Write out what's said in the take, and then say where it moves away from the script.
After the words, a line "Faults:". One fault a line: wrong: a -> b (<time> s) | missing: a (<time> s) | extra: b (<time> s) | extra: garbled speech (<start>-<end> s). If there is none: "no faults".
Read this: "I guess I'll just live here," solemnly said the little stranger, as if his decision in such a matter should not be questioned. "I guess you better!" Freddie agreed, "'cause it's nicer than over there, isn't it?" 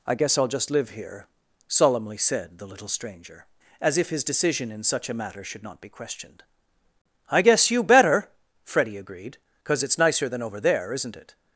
"I guess I'll just live here," solemnly said the little stranger, as if his decision in such a matter should not be questioned. "I guess you better!" Freddie agreed, "'cause it's nicer than over there, isn't it?"
Faults:
no faults